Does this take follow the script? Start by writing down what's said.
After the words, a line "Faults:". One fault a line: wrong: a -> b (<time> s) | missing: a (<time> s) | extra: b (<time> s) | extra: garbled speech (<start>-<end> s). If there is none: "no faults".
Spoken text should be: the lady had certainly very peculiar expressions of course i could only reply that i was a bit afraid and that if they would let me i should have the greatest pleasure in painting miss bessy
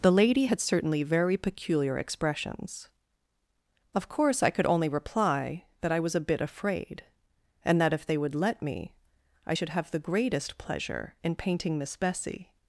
the lady had certainly very peculiar expressions of course i could only reply that i was a bit afraid and that if they would let me i should have the greatest pleasure in painting miss bessy
Faults:
no faults